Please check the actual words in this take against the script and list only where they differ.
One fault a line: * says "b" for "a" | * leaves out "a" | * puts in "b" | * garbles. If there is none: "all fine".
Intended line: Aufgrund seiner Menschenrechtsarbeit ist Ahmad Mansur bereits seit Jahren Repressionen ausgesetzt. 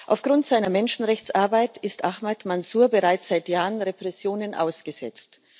all fine